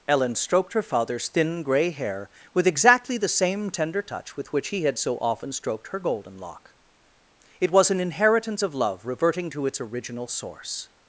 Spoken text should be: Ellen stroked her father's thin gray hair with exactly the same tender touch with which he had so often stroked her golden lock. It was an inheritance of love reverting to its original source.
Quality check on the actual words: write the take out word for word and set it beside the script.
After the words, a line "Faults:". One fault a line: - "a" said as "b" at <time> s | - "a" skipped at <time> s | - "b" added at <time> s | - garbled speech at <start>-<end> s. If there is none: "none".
Ellen stroked her father's thin gray hair with exactly the same tender touch with which he had so often stroked her golden lock. It was an inheritance of love reverting to its original source.
Faults:
none